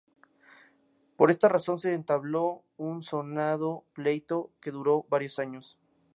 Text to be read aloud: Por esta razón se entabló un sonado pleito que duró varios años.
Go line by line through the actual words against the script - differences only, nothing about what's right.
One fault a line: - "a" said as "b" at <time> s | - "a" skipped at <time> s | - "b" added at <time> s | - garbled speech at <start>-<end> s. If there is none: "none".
none